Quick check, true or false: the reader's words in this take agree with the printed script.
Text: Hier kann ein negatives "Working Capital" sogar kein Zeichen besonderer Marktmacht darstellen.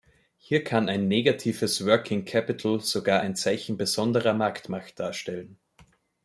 false